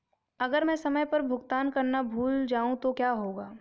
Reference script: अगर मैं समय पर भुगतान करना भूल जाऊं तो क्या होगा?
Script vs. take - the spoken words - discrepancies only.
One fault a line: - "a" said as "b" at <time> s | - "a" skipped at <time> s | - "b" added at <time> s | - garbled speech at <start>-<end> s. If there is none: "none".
none